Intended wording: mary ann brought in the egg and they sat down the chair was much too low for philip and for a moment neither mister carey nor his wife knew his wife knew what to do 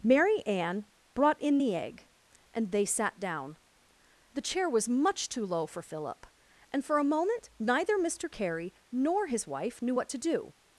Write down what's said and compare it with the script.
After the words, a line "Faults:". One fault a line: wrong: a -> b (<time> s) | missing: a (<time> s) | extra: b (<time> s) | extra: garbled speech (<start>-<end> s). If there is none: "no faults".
mary ann brought in the egg and they sat down the chair was much too low for philip and for a moment neither mister carey nor his wife knew what to do
Faults:
missing: his wife knew (9.9 s)